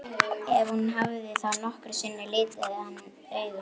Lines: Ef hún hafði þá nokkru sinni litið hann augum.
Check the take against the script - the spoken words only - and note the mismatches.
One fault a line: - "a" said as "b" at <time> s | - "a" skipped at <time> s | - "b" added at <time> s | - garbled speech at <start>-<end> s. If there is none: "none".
none